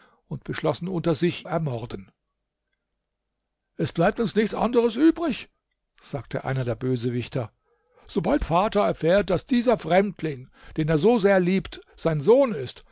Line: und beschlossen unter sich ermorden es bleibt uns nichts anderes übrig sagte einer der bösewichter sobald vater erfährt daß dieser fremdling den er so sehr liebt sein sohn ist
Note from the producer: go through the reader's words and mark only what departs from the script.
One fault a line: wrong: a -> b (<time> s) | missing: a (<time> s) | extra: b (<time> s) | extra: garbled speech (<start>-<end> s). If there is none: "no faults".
no faults